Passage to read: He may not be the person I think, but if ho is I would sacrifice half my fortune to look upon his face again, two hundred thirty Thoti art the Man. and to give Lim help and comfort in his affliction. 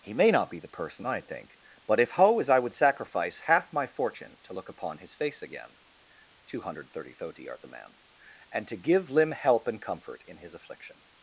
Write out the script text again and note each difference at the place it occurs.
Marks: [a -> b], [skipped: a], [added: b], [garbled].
He may not be the person I think, but if ho is I would sacrifice half my fortune to look upon his face again, two hundred thirty Thoti art the Man. and to give Lim help and comfort in his affliction.